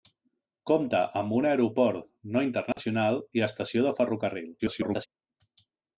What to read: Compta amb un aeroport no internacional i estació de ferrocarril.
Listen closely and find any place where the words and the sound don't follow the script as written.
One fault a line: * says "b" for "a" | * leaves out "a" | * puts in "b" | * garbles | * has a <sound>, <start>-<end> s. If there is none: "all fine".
* has a dropout, 2.7-2.8 s
* garbles